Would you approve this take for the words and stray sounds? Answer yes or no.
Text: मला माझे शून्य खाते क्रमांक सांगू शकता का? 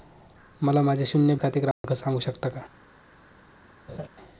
no